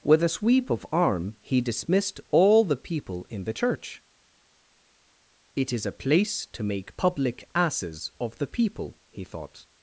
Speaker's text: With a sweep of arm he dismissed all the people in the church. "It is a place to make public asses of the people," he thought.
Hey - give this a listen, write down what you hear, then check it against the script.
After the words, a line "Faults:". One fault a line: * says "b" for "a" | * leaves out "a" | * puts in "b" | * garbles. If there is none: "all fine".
With a sweep of arm he dismissed all the people in the church. "It is a place to make public asses of the people," he thought.
Faults:
all fine